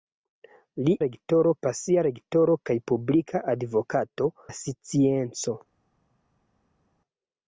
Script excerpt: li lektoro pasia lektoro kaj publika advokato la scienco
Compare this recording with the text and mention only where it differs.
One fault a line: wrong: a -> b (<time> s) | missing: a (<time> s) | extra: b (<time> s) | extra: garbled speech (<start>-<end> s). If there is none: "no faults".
no faults